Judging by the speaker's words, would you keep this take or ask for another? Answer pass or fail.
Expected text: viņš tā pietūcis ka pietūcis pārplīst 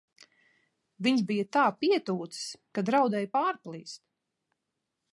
fail